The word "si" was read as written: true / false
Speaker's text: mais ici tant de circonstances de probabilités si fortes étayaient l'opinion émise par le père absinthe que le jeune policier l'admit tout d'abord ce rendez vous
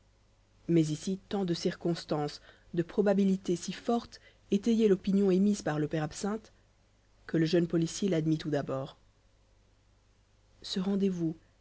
true